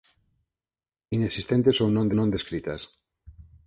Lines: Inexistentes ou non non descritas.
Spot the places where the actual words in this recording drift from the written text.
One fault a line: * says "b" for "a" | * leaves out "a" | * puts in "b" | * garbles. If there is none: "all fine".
all fine